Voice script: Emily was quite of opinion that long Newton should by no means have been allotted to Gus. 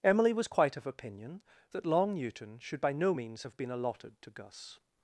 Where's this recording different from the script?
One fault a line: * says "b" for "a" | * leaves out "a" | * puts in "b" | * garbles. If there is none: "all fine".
all fine